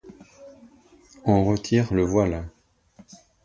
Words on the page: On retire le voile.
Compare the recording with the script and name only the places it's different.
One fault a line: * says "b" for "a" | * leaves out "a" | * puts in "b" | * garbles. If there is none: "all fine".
all fine